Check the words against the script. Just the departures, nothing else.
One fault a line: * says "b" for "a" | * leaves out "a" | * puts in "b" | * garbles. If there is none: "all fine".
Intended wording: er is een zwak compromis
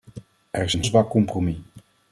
all fine